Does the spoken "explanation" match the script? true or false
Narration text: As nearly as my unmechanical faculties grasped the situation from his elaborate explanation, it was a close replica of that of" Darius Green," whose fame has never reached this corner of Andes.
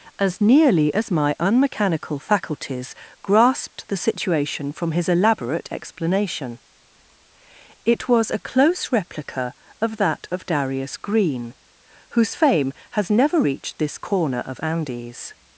true